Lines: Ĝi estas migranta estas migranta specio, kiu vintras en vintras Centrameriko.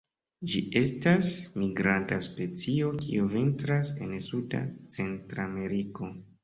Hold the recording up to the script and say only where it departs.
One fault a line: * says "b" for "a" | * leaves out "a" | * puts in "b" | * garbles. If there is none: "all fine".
* leaves out "estas migranta"
* says "suda" for "vintras"